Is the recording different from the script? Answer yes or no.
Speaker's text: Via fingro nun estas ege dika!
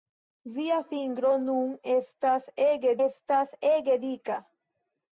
yes